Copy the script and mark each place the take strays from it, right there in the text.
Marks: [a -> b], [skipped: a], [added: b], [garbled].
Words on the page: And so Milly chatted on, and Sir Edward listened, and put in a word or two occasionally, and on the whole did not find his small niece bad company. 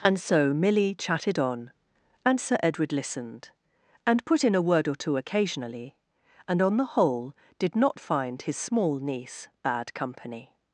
And so Milly chatted on, and Sir Edward listened, and put in a word or two occasionally, and on the whole did not find his small niece bad company.